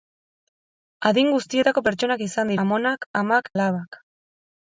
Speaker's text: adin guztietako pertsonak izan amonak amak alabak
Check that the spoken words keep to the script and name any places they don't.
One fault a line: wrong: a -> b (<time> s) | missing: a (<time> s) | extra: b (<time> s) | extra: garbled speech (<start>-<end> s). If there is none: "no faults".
no faults